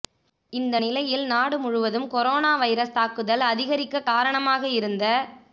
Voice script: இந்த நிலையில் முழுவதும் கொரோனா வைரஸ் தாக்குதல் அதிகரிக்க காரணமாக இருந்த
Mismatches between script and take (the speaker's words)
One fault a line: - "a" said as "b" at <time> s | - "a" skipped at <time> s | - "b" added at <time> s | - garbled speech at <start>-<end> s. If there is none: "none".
- "நாடு" added at 1.3 s